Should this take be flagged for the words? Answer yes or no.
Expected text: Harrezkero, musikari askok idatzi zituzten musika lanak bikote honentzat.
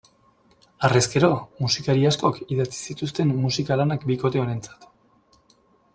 no